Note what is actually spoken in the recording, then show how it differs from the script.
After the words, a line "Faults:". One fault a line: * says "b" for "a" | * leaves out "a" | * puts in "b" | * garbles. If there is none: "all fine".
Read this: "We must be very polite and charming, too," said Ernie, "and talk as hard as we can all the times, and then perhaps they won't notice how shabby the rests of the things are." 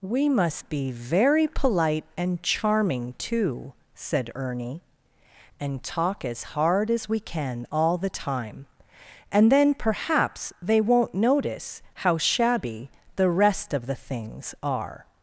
"We must be very polite and charming, too," said Ernie, "and talk as hard as we can all the time, and then perhaps they won't notice how shabby the rest of the things are."
Faults:
* says "time" for "times"
* says "rest" for "rests"